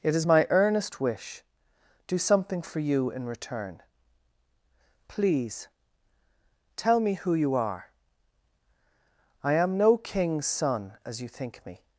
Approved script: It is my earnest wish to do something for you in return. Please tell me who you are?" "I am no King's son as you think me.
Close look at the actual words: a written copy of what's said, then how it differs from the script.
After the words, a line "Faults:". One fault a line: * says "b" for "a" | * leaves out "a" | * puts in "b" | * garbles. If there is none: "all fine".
It is my earnest wish do something for you in return. Please tell me who you are?" "I am no King's son as you think me.
Faults:
* leaves out "to"